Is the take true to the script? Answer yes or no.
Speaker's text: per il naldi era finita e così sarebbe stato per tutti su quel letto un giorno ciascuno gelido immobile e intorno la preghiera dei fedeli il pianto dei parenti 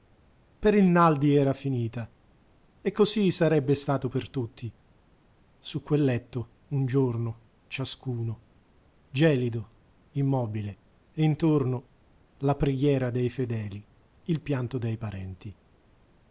yes